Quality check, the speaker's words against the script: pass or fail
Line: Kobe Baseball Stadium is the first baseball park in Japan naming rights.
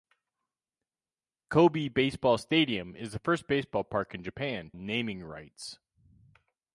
pass